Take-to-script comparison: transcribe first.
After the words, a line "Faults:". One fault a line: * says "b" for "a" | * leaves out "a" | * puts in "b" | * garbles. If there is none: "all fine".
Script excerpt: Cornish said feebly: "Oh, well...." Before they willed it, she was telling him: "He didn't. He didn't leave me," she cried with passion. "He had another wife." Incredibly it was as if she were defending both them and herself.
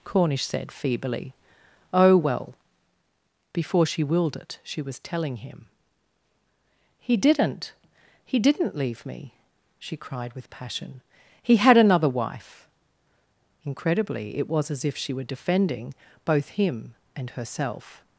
Cornish said feebly: "Oh, well...." Before she willed it, she was telling him: "He didn't. He didn't leave me," she cried with passion. "He had another wife." Incredibly it was as if she were defending both him and herself.
Faults:
* says "she" for "they"
* says "him" for "them"